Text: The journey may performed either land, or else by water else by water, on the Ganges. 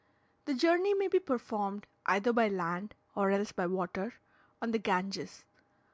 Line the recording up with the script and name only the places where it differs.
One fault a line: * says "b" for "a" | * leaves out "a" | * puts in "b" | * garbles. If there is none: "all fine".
* puts in "be"
* puts in "by"
* leaves out "else by water"